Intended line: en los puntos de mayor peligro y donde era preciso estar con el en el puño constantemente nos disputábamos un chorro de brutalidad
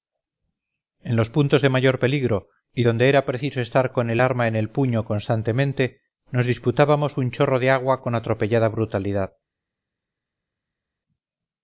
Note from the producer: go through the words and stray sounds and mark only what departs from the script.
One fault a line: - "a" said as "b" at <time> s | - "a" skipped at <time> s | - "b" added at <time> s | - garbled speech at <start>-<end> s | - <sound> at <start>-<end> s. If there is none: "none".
- "arma" added at 4.2 s
- "agua con atropellada" added at 7.7 s